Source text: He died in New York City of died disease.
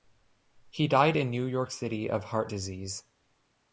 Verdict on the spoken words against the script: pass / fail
fail